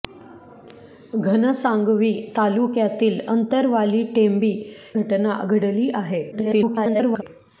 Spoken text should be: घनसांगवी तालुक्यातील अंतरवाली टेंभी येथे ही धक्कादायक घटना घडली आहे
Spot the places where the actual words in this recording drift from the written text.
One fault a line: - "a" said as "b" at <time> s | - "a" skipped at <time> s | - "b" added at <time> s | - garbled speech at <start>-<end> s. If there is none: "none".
- "येथे ही धक्कादायक" skipped at 4.5 s
- garbled speech at 6.3-7.2 s